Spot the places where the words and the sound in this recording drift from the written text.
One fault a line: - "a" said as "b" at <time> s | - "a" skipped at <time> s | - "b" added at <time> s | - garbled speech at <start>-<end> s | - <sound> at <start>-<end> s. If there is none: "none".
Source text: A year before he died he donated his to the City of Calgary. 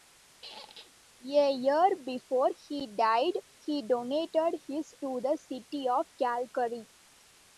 - squeak at 0.4-1.0 s